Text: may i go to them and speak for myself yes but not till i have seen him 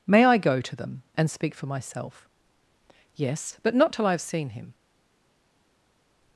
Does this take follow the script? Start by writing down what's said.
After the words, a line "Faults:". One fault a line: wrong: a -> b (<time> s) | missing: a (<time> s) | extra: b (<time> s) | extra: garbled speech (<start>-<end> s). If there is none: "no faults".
may i go to them and speak for myself yes but not till i have seen him
Faults:
no faults